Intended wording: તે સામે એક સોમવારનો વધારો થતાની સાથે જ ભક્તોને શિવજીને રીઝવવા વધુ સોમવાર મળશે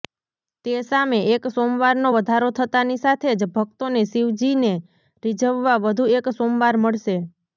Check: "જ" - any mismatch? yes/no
no